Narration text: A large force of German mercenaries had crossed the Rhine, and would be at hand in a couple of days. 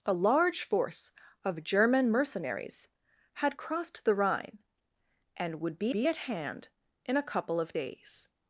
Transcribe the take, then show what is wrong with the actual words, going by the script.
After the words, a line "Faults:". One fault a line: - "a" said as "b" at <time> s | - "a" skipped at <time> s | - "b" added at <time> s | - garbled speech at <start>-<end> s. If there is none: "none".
A large force of German mercenaries had crossed the Rhine, and would be be at hand in a couple of days.
Faults:
- "be" added at 5.9 s